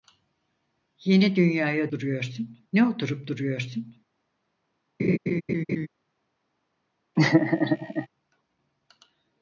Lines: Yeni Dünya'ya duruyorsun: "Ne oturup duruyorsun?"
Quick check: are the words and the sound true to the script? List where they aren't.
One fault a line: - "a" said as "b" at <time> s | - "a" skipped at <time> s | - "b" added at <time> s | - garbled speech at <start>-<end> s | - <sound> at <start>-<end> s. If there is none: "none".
- laugh at 5.0-5.9 s
- laugh at 7.2-8.1 s